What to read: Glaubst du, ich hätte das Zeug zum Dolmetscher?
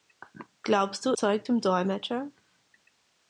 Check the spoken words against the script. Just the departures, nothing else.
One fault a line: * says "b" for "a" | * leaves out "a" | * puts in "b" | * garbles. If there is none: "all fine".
* leaves out "ich hätte das"